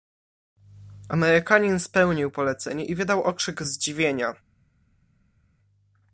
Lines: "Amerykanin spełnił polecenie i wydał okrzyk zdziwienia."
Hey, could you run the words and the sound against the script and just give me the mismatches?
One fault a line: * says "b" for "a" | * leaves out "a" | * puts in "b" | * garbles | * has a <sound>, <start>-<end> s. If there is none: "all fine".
all fine